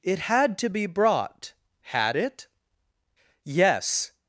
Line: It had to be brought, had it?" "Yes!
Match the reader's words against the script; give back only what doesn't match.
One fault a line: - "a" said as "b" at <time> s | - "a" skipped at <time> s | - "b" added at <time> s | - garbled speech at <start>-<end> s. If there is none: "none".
none